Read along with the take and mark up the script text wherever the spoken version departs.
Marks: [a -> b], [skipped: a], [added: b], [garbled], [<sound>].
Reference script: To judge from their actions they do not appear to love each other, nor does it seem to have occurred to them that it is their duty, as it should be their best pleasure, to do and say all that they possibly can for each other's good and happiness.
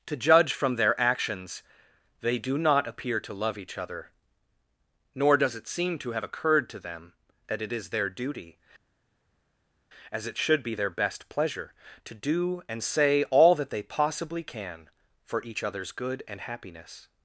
To judge from their actions they do not appear to love each other, nor does it seem to have occurred to them that it is their duty, as it should be their best pleasure, to do and say all that they possibly can for each other's good and happiness.